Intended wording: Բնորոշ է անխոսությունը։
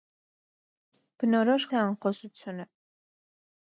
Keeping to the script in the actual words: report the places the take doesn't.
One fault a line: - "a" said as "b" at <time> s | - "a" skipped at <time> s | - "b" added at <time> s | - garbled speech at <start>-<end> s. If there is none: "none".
none